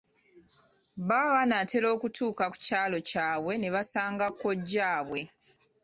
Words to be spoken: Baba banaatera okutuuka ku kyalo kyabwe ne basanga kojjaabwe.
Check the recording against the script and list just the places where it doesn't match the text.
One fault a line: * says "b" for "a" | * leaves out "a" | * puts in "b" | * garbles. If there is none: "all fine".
all fine